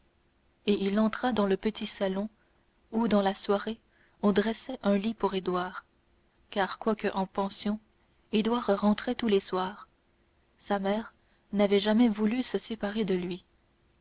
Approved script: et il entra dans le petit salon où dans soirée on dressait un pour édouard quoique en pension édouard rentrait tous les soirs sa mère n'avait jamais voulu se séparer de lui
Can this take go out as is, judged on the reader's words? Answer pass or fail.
fail